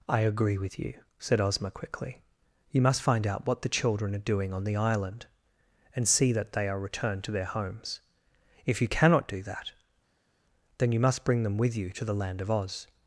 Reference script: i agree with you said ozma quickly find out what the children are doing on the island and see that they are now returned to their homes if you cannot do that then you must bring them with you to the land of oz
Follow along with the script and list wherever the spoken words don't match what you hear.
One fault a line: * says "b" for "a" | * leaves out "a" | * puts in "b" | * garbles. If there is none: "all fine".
* puts in "you must"
* leaves out "now"